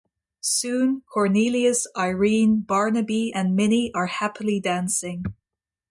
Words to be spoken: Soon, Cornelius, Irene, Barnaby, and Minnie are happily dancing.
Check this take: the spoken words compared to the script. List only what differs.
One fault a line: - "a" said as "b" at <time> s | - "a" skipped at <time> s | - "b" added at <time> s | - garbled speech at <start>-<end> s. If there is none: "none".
none